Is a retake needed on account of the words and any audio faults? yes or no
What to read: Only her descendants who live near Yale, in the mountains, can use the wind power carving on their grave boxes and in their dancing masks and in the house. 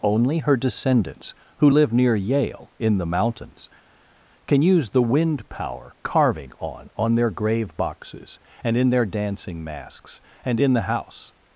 yes